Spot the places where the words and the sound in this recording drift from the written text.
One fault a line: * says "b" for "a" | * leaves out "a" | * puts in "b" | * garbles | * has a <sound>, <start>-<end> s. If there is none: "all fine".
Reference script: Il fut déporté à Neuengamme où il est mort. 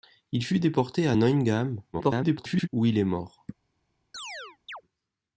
* garbles
* has a chirp, 4.1-4.8 s